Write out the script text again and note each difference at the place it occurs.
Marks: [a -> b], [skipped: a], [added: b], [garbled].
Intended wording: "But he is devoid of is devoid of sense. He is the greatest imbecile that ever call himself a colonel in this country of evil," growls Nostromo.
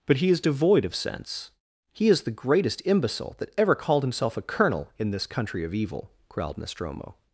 "But he is devoid of [skipped: is devoid of] sense. He is the greatest imbecile that ever [call -> called] himself a colonel in this country of evil," [growls -> growled] Nostromo.